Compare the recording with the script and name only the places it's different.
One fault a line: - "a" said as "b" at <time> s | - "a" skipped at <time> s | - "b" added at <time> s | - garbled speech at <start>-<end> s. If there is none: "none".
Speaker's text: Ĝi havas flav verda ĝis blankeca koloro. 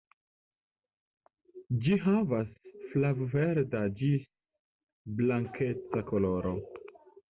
none